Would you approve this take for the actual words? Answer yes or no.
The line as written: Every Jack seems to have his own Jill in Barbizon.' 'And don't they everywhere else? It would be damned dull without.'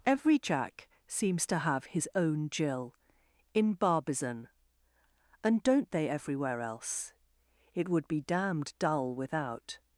yes